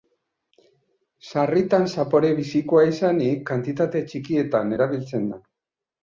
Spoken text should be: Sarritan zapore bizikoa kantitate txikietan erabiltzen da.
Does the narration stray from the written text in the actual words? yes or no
yes